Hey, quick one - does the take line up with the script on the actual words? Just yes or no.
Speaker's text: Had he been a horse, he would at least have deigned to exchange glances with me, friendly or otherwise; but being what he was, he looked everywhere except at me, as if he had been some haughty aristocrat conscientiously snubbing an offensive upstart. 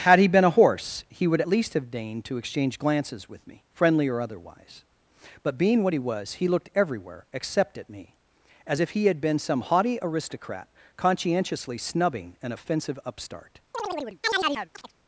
yes